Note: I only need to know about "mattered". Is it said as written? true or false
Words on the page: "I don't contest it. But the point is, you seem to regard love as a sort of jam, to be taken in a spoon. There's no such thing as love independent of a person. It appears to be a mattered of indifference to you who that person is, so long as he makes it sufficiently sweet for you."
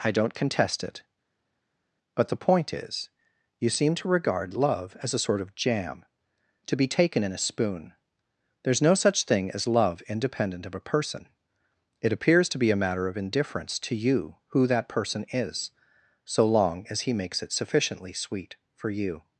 false